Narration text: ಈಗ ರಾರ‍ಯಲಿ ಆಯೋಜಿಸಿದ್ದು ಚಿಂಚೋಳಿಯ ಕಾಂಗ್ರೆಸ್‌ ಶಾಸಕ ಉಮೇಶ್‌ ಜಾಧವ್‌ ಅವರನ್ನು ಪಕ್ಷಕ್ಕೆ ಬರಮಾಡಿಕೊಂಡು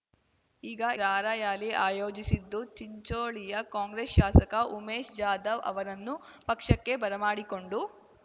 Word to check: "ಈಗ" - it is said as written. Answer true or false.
true